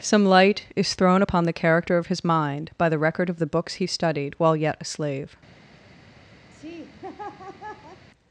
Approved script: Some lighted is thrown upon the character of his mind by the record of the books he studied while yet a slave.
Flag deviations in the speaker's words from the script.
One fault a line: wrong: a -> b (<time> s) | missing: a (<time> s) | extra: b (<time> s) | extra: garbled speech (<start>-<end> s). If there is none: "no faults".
wrong: lighted -> light (0.2 s)